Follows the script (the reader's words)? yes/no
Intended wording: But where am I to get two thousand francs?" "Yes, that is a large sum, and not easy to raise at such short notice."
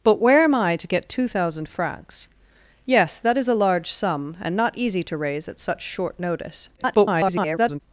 no